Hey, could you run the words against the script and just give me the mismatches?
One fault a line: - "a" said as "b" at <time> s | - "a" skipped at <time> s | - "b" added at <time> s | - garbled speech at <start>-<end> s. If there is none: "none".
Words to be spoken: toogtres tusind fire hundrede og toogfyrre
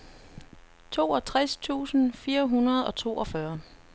none